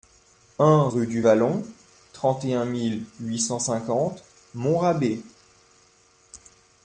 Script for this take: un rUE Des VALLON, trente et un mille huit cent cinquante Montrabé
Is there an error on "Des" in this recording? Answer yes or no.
yes